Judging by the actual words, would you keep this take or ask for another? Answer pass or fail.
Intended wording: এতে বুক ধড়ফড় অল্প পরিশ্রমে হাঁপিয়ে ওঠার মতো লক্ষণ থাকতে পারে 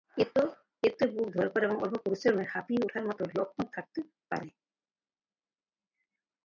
fail